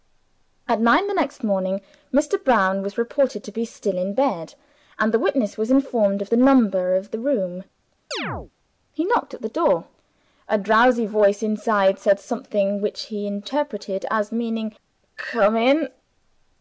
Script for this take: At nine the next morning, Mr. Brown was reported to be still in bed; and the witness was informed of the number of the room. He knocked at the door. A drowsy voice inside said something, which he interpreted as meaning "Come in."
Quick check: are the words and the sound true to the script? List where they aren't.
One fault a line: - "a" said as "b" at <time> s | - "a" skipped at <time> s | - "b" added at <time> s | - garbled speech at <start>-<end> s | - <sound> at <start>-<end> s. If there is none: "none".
- chirp at 8.1-8.5 s